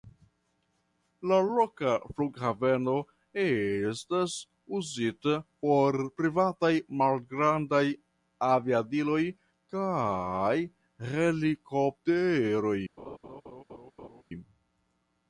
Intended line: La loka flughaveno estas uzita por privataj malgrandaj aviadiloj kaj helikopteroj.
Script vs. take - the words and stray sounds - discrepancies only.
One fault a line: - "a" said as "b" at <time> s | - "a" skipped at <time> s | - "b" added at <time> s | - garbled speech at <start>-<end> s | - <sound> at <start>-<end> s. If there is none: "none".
- laugh at 13.0-14.2 s